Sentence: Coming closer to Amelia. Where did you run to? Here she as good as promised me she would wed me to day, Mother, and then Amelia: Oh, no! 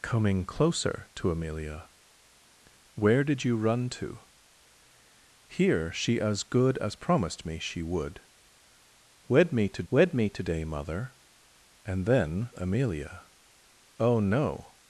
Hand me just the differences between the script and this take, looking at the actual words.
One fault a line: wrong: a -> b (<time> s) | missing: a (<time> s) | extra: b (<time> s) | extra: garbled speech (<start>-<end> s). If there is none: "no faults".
extra: wed me to (9.9 s)